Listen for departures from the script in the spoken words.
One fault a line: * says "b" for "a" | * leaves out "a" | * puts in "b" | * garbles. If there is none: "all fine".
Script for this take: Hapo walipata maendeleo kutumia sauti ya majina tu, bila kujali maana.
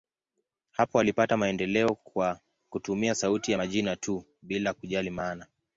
* puts in "kwa"